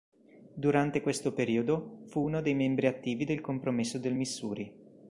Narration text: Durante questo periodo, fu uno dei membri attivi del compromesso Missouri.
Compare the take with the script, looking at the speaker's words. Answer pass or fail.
fail